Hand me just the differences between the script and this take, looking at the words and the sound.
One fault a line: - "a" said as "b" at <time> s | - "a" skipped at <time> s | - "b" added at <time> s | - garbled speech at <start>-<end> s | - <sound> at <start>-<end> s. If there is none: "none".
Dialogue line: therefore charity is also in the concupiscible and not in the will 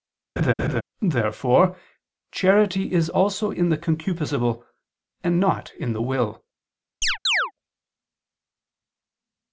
- laugh at 0.4-0.8 s
- chirp at 7.0-7.5 s